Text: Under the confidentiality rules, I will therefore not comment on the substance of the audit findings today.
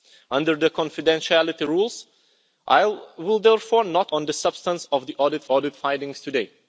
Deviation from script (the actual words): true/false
true